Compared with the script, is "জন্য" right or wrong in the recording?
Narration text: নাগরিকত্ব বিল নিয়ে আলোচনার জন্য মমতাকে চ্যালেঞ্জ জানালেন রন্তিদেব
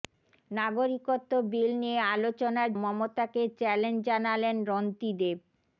wrong